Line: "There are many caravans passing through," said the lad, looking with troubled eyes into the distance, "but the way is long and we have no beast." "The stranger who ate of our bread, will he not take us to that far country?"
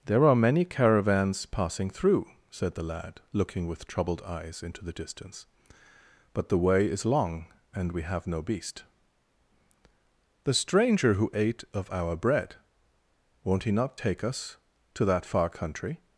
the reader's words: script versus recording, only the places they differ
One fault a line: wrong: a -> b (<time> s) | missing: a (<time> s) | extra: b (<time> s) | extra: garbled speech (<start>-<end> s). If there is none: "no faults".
wrong: will -> won't (13.4 s)